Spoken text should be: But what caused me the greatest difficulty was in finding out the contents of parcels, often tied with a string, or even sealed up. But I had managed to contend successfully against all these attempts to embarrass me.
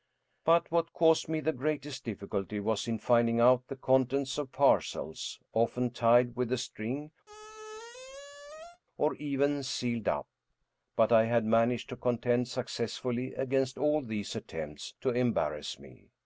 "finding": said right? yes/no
yes